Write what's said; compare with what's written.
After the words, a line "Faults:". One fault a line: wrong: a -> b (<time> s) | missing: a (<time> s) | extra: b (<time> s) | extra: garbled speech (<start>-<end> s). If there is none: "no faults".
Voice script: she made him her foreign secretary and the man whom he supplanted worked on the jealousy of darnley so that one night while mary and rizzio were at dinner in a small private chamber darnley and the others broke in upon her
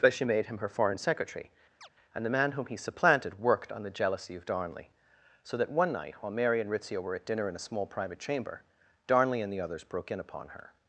but she made him her foreign secretary and the man whom he supplanted worked on the jealousy of darnley so that one night while mary and rizzio were at dinner in a small private chamber darnley and the others broke in upon her
Faults:
extra: but (0.0 s)